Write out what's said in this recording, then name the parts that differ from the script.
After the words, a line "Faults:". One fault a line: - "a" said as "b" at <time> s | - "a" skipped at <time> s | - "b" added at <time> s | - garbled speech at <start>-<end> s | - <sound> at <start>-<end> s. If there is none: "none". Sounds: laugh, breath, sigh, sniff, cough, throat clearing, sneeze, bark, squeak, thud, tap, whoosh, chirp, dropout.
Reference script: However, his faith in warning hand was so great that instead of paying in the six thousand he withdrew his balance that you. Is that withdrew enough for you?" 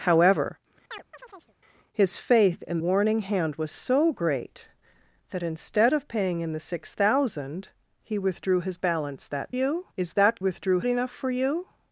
However, his faith in warning hand was so great that instead of paying in the six thousand he withdrew his balance that you. Is that withdrew enough for you?"
Faults:
- chirp at 0.9-1.6 s